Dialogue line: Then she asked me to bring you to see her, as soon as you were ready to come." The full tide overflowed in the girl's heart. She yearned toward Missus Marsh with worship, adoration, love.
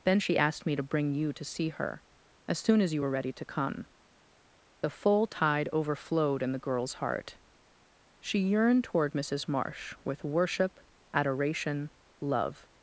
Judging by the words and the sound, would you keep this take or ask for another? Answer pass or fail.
pass